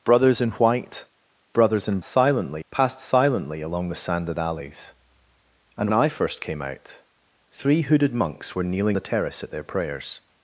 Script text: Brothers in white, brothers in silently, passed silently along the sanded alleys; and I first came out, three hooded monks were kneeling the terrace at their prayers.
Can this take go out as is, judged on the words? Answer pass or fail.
pass